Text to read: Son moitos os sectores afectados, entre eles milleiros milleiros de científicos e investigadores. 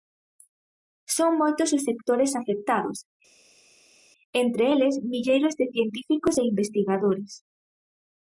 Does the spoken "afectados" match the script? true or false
true